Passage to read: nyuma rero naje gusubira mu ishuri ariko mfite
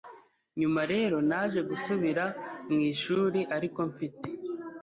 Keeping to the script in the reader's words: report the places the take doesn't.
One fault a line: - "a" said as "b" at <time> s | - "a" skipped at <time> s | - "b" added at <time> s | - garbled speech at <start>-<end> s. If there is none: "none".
none